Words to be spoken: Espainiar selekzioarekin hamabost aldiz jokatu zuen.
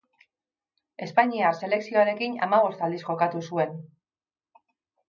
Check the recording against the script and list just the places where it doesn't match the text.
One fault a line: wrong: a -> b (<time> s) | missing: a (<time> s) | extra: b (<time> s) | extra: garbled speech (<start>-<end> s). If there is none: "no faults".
no faults